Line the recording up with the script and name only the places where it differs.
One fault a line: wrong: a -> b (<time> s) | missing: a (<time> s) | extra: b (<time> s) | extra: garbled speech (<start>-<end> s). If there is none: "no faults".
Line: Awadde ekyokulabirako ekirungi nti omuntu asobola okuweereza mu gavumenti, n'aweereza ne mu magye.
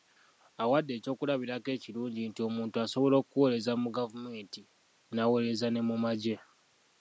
no faults